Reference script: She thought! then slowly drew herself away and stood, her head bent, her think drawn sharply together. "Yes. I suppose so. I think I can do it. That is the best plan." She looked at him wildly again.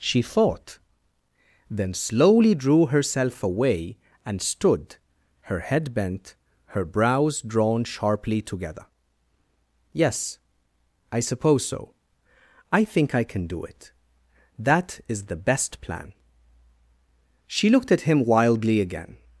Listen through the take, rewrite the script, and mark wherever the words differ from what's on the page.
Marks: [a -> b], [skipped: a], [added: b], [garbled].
She thought! then slowly drew herself away and stood, her head bent, her [think -> brows] drawn sharply together. "Yes. I suppose so. I think I can do it. That is the best plan." She looked at him wildly again.